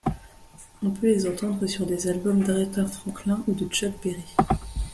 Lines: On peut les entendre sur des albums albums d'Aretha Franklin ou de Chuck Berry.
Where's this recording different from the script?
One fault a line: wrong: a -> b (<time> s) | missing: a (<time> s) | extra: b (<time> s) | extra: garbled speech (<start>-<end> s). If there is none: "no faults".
missing: albums (2.4 s)